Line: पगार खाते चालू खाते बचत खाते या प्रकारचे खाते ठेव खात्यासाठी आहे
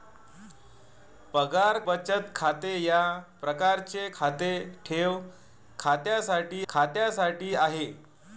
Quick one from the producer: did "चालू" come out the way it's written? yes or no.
no